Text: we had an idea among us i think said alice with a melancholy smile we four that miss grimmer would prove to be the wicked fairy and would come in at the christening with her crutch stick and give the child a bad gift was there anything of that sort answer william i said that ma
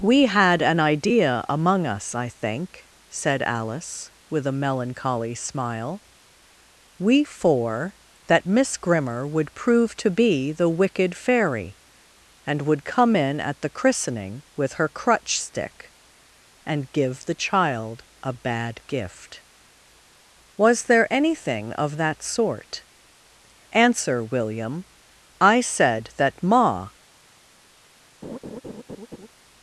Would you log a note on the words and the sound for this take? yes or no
yes